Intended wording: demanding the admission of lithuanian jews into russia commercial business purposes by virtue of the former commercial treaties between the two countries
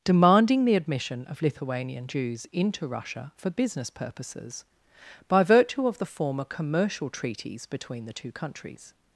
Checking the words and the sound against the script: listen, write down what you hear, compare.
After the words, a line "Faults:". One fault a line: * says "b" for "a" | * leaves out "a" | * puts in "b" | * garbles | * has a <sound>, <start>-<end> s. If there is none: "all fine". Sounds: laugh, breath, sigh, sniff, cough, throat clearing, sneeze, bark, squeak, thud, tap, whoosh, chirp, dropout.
demanding the admission of lithuanian jews into russia for business purposes by virtue of the former commercial treaties between the two countries
Faults:
* says "for" for "commercial"